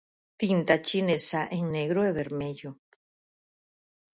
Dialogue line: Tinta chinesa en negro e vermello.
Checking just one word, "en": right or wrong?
right